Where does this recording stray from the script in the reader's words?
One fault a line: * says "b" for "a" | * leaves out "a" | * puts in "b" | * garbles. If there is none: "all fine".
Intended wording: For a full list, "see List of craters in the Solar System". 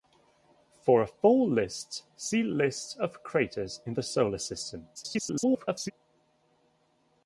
* garbles